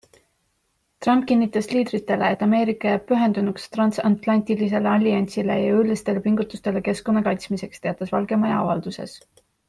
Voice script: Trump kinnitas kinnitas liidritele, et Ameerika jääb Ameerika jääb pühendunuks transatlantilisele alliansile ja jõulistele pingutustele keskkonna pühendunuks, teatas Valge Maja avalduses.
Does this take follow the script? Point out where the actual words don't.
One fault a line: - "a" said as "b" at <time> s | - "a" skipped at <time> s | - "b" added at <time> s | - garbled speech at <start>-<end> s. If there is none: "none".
- "kinnitas" skipped at 1.7 s
- "Ameerika jääb" skipped at 3.1 s
- "pühendunuks" said as "kaitsmiseks" at 7.3 s